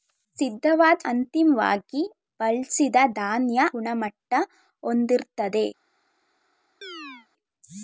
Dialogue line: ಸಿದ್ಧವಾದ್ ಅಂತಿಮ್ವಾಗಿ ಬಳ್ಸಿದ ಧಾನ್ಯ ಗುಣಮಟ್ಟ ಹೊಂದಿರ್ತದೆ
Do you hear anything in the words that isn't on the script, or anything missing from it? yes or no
no